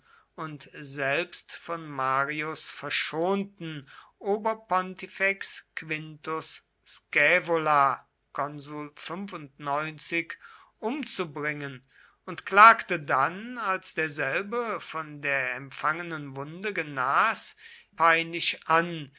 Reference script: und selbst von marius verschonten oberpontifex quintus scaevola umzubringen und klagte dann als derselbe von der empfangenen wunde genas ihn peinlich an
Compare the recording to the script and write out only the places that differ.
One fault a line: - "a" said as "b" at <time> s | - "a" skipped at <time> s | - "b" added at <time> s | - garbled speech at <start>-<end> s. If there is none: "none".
- "ihn" skipped at 17.6 s